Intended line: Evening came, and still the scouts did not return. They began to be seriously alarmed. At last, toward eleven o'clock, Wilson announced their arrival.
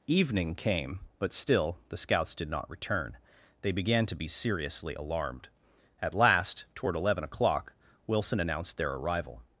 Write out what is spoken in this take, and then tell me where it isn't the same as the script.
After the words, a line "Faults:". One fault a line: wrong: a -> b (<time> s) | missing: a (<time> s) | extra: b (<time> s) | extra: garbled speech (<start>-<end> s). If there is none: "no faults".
Evening came, but still the scouts did not return. They began to be seriously alarmed. At last, toward eleven o'clock, Wilson announced their arrival.
Faults:
wrong: and -> but (1.2 s)